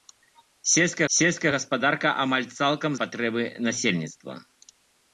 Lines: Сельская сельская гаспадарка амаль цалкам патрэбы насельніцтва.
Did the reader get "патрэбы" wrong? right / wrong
right